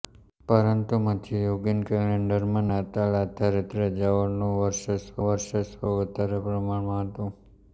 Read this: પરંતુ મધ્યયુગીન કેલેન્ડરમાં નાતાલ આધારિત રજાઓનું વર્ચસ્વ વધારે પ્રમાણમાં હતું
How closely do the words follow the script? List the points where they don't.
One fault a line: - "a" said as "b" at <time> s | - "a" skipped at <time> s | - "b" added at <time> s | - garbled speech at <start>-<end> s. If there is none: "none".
- "વર્ચસ્વ" added at 5.2 s